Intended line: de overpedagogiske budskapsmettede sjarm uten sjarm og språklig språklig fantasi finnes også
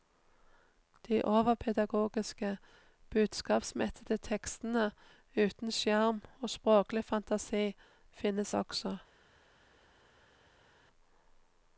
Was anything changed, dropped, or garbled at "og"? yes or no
no